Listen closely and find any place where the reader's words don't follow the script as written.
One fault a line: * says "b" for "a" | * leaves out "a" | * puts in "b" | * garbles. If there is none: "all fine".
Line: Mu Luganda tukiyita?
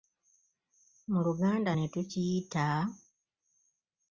* puts in "ne"